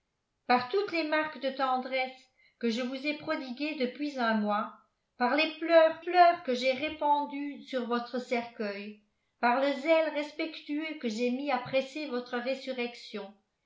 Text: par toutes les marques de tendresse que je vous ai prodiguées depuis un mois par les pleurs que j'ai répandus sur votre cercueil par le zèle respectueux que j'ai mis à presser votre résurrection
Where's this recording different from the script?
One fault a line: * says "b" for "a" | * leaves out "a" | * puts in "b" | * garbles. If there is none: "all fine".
* puts in "pleurs"